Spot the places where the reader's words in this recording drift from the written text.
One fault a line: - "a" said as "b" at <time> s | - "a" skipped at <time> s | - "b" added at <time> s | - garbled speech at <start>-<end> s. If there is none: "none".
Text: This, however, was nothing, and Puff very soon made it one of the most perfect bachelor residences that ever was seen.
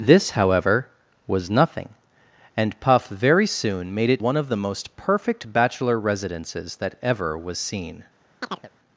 none